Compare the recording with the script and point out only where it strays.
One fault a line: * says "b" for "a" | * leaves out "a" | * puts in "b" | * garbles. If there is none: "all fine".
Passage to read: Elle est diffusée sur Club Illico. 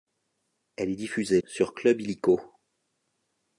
all fine